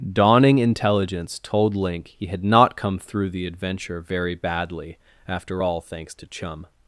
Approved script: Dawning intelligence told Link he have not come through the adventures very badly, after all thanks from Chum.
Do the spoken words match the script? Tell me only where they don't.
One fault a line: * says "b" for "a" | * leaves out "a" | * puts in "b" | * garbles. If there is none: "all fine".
* says "had" for "have"
* says "adventure" for "adventures"
* says "to" for "from"